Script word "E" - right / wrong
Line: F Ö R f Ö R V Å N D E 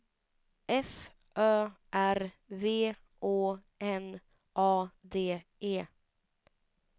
right